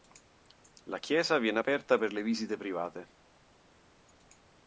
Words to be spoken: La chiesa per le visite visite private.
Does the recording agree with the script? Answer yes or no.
no